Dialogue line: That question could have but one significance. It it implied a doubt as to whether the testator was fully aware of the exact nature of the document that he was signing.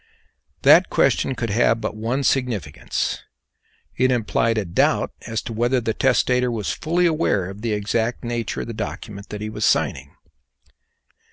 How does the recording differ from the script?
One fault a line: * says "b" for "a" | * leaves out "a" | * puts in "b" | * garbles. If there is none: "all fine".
* leaves out "it"